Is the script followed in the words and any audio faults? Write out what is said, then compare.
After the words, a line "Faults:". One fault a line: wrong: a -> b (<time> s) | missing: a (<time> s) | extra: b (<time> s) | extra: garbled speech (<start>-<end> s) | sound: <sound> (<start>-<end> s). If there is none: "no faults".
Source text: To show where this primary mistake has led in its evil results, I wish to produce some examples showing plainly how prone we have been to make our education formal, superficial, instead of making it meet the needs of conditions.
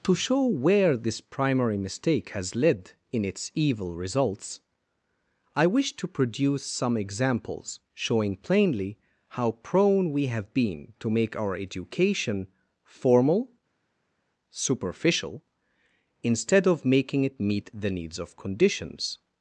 To show where this primary mistake has led in its evil results, I wish to produce some examples showing plainly how prone we have been to make our education formal, superficial, instead of making it meet the needs of conditions.
Faults:
no faults